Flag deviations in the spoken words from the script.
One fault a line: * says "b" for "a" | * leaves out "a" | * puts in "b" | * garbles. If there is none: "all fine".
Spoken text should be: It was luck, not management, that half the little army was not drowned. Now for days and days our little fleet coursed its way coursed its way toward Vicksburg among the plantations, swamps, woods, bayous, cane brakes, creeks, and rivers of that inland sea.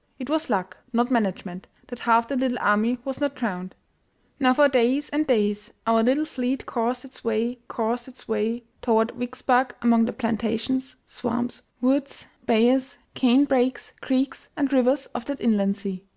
all fine